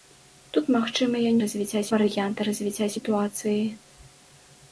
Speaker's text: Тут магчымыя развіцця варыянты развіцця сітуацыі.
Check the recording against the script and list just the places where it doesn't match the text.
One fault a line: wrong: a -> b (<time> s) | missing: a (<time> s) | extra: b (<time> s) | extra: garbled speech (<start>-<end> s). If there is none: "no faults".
no faults